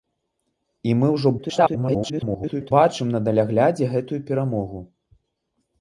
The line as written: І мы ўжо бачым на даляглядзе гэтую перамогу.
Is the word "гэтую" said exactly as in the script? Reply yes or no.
yes